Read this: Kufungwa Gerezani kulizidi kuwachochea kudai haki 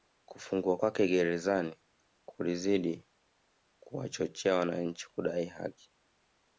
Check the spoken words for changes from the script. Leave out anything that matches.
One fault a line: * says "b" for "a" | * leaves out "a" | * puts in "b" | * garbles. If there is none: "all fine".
* puts in "kwake"
* puts in "wananchi"